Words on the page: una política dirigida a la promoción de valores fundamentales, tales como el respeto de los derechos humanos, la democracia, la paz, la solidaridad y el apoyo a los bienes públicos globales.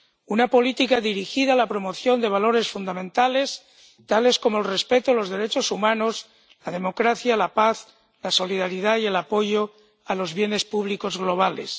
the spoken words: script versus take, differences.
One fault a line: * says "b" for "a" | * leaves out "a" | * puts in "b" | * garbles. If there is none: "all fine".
all fine